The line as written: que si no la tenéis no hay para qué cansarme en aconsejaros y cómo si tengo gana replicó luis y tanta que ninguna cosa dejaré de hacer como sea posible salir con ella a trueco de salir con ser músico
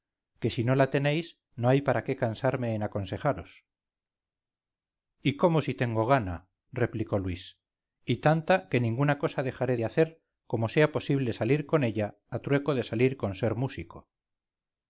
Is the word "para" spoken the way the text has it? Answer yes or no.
yes